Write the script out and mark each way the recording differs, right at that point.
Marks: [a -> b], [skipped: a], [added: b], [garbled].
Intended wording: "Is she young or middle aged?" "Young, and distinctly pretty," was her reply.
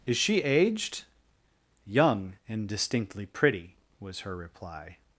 "Is she [skipped: young or middle] aged?" "Young, and distinctly pretty," was her reply.